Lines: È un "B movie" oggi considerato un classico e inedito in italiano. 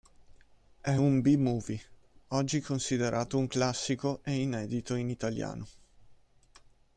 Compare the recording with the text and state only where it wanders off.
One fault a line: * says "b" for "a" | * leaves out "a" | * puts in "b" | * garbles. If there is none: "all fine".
all fine